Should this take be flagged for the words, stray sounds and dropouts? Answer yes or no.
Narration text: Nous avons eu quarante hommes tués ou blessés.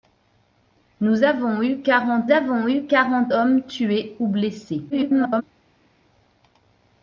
yes